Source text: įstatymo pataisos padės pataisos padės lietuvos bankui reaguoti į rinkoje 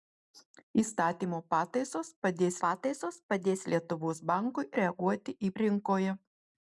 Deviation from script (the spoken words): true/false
false